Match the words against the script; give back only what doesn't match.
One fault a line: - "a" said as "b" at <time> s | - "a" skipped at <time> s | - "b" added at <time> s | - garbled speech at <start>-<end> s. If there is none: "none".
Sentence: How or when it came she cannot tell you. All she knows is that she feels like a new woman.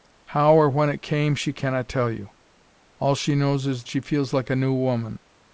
- "that" skipped at 3.8 s